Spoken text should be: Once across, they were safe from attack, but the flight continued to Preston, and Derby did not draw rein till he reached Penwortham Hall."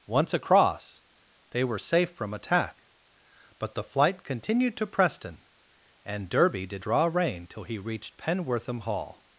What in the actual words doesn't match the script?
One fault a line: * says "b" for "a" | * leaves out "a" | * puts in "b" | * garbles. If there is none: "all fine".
* leaves out "not"